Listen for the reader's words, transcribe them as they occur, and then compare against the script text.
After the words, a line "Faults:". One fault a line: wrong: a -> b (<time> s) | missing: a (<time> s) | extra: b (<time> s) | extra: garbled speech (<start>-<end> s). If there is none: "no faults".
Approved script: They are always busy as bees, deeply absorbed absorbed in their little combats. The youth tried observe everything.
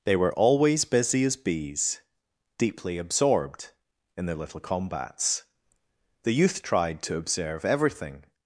They were always busy as bees, deeply absorbed in their little combats. The youth tried to observe everything.
Faults:
wrong: are -> were (0.1 s)
missing: absorbed (3.7 s)
extra: to (7.0 s)